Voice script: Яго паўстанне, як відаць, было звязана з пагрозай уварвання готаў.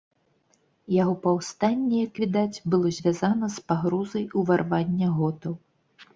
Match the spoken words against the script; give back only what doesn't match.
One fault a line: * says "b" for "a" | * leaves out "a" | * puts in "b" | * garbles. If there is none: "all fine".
all fine